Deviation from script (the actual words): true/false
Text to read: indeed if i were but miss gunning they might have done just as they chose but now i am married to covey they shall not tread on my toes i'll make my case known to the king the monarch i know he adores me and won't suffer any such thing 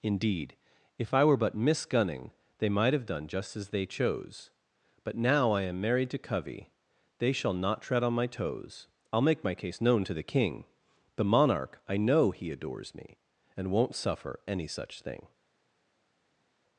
false